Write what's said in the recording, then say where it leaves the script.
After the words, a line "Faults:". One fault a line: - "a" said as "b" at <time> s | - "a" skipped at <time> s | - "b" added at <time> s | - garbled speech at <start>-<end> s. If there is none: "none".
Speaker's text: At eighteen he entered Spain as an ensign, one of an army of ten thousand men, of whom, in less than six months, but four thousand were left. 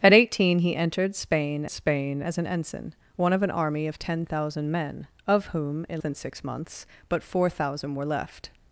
At eighteen he entered Spain Spain as an ensign, one of an army of ten thousand men, of whom, in than six months, but four thousand were left.
Faults:
- "Spain" added at 1.7 s
- "less" skipped at 6.0 s